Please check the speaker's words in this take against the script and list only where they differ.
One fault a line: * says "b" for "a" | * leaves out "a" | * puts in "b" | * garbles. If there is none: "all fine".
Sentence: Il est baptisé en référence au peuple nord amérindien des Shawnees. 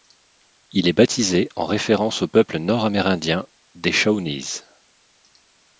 all fine